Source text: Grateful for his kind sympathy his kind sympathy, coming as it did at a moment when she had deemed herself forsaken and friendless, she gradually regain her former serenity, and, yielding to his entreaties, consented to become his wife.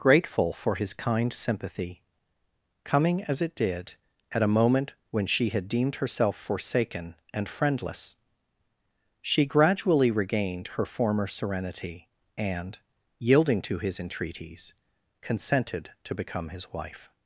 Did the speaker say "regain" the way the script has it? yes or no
no